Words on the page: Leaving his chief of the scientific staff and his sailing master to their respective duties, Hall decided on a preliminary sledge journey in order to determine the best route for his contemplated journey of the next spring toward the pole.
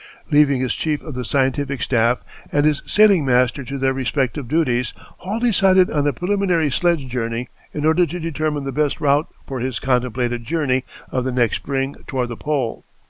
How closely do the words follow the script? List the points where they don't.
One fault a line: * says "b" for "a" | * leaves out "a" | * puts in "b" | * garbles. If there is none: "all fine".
all fine